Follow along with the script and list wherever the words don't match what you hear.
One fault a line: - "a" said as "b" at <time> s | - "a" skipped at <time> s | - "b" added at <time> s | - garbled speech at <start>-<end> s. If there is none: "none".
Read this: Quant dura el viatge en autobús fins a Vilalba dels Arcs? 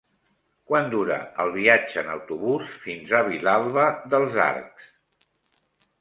none